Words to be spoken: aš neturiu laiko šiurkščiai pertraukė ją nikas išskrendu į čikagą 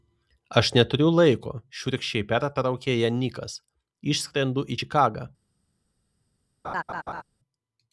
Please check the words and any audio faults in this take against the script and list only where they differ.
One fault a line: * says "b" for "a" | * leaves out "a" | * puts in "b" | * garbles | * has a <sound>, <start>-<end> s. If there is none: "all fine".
* has a laugh, 6.6-7.2 s